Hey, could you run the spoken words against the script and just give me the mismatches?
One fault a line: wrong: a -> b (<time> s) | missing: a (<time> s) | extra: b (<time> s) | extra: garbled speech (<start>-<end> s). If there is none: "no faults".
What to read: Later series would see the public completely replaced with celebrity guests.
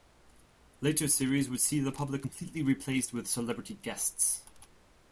no faults